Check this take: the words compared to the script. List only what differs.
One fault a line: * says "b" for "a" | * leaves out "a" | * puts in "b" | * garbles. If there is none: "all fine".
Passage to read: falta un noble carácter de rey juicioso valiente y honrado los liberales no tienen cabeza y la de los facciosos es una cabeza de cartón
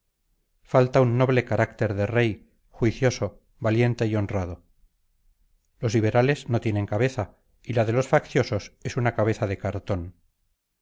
all fine